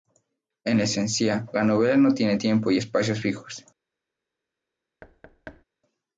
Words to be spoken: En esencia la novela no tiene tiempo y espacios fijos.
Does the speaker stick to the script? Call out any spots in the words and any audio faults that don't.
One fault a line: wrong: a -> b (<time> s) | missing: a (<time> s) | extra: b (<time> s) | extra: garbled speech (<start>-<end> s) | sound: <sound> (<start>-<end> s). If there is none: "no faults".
sound: thud (5.0-5.6 s)